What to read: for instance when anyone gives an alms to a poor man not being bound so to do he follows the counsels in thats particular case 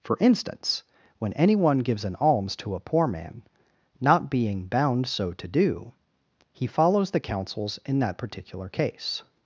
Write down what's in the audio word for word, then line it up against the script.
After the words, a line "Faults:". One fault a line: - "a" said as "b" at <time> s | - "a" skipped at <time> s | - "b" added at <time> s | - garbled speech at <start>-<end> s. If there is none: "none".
for instance when anyone gives an alms to a poor man not being bound so to do he follows the counsels in that particular case
Faults:
- "thats" said as "that" at 8.0 s